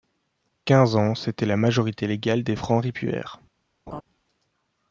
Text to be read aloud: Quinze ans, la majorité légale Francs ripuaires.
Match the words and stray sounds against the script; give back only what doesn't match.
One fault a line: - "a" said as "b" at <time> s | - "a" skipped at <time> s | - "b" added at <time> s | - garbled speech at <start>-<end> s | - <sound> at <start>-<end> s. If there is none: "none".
- "c'était" added at 1.1 s
- "des" added at 2.4 s
- laugh at 3.9-4.0 s